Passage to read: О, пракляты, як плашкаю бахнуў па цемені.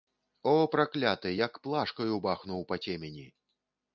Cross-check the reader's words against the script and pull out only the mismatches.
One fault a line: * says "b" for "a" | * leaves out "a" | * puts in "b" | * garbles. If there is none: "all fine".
all fine